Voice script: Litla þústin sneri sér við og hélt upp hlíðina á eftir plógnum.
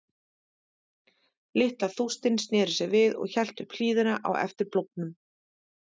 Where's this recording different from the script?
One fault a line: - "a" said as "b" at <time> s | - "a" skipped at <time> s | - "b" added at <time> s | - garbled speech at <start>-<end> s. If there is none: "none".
none